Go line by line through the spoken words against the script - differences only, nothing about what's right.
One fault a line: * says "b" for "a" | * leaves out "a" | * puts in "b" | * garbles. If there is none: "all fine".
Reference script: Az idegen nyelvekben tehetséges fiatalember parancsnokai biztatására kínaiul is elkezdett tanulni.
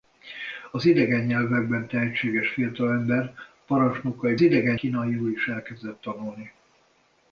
* says "idegen" for "biztatására"